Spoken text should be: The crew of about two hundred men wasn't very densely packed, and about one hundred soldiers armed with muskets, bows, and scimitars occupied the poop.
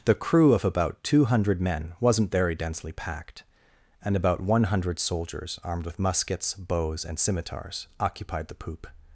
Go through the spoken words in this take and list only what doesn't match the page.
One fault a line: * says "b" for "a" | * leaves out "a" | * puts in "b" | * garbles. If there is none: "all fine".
all fine